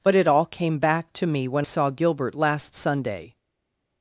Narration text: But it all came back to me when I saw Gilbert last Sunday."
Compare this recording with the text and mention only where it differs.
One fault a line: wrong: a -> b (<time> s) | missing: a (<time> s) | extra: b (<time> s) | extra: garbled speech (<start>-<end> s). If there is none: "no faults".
missing: I (1.7 s)